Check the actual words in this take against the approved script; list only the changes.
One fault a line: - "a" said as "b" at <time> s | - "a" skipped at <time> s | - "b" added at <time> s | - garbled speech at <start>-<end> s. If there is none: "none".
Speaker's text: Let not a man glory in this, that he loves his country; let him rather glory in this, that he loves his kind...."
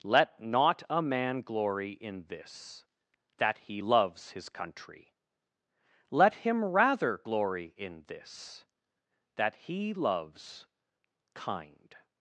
- "his" skipped at 10.7 s